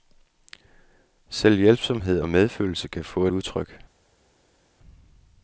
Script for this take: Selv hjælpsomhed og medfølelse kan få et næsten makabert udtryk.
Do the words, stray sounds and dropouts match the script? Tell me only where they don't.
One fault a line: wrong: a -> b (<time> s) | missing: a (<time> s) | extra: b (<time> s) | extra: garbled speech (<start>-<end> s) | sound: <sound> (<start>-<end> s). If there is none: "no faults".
missing: et næsten makabert (3.3 s)